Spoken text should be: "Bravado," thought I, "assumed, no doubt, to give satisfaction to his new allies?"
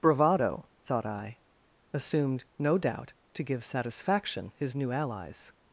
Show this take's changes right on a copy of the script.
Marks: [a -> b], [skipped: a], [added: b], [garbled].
"Bravado," thought I, "assumed, no doubt, to give satisfaction [skipped: to] his new allies?"